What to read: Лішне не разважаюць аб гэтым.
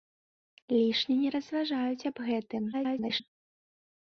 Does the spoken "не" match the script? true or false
true